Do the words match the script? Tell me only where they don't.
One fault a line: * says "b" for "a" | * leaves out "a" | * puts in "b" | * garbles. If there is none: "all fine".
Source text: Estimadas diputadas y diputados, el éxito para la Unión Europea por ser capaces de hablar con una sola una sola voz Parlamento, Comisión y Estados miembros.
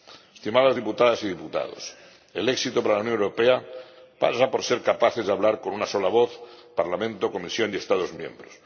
* puts in "pasa"
* leaves out "una sola"